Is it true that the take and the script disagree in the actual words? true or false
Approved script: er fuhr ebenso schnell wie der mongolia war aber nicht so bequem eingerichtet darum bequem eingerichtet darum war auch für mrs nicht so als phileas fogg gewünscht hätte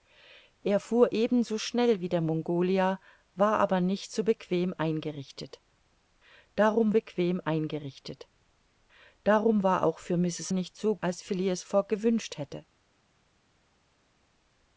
false